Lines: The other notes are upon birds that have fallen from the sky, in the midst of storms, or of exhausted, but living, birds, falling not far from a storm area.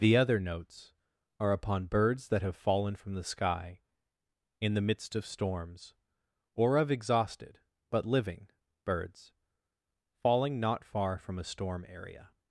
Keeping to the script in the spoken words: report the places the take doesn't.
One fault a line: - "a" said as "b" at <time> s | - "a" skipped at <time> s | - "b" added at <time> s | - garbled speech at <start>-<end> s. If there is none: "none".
none